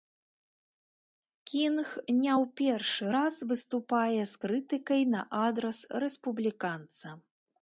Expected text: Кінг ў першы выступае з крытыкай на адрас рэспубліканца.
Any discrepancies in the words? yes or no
yes